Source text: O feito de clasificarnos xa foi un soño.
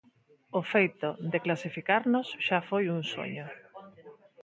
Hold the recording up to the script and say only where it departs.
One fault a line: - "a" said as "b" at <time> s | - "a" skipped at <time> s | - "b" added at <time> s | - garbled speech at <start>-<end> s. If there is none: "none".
none